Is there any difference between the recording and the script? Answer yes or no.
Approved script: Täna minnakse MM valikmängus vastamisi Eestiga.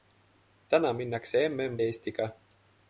yes